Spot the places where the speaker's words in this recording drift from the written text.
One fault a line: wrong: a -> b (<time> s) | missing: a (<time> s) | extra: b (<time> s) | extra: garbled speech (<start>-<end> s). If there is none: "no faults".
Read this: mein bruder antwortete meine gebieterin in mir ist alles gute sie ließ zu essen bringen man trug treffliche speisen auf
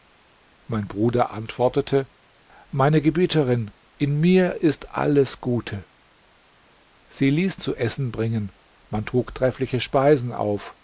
no faults